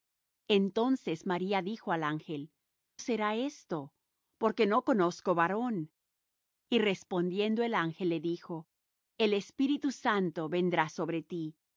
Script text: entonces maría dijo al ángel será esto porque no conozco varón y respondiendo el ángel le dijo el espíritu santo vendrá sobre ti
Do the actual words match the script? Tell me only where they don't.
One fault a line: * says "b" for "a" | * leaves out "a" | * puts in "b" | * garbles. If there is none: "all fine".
all fine